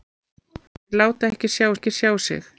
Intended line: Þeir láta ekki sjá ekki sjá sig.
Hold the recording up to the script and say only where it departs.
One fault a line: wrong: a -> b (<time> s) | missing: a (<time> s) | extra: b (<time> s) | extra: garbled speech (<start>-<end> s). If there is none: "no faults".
no faults